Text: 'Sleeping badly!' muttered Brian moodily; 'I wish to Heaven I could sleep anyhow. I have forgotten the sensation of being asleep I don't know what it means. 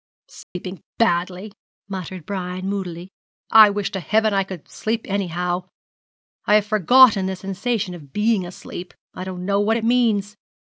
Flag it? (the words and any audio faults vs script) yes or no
yes